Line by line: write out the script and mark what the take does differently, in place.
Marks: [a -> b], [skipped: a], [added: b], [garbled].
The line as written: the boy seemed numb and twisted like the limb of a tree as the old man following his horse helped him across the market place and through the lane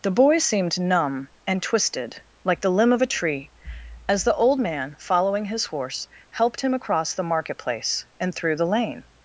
the boy seemed numb and twisted like the limb of a tree as the old man following his horse helped him across the market place and through the lane